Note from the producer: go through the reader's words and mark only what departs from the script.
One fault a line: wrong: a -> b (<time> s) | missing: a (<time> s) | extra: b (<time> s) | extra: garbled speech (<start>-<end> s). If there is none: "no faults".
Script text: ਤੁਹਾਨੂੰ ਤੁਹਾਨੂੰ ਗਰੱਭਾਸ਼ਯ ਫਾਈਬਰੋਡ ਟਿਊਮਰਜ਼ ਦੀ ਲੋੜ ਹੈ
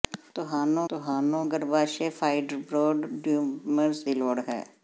no faults